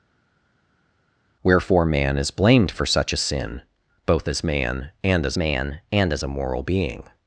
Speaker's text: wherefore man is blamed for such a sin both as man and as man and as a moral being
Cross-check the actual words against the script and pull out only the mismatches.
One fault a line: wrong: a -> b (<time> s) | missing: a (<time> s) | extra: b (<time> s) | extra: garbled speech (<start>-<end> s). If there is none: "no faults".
no faults